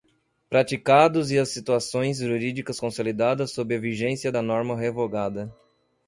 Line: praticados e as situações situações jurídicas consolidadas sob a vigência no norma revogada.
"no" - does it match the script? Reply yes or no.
no